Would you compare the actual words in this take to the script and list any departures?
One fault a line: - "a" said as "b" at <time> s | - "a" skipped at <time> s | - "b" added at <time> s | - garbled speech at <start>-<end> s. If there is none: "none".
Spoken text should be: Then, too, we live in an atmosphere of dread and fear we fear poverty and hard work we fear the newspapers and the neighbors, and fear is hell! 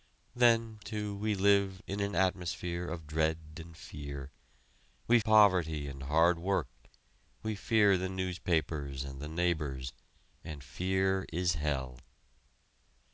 - "fear" skipped at 5.2 s